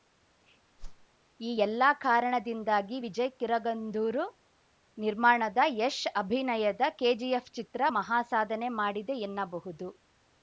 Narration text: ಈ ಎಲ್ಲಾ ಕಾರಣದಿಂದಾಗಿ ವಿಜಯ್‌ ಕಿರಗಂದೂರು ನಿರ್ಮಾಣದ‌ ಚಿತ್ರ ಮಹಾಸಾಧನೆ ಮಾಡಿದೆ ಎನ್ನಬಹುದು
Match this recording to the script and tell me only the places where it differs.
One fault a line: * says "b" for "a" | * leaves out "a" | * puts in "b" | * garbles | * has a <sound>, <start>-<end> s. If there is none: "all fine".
* has a whoosh, 0.8-1.1 s
* puts in "ಯಶ್ ಅಭಿನಯದ ಕೆಜಿಎಫ್"